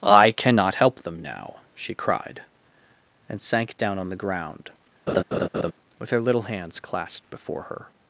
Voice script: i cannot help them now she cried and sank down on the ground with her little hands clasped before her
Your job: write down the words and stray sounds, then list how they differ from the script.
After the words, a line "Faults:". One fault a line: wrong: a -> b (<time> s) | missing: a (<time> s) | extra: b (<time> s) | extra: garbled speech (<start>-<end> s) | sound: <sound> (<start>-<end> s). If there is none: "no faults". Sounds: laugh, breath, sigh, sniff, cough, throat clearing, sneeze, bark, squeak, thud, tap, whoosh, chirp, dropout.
i cannot help them now she cried and sank down on the ground with her little hands clasped before her
Faults:
sound: laugh (5.1-5.7 s)